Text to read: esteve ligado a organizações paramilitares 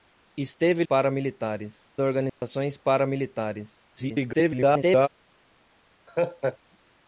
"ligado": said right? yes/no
no